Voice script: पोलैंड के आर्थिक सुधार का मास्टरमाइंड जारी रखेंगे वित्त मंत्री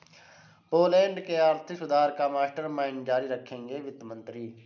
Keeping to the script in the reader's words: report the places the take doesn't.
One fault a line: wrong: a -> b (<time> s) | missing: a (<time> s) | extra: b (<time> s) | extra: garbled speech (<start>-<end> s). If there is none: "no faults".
no faults